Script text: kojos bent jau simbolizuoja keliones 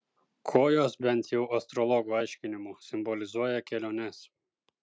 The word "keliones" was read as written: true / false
true